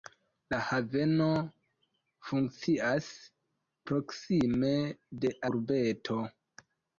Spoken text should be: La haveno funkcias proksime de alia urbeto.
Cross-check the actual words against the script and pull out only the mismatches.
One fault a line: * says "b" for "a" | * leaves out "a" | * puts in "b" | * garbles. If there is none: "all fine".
* leaves out "alia"